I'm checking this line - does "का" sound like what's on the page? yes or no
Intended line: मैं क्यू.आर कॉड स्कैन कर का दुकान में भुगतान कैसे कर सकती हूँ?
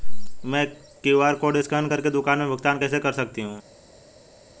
no